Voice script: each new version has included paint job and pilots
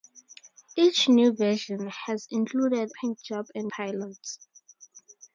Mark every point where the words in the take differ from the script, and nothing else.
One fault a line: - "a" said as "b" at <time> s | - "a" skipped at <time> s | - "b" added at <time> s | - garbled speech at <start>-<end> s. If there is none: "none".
none